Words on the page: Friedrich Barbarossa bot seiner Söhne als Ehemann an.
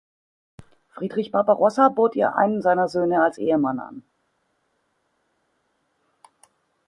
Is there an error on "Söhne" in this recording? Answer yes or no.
no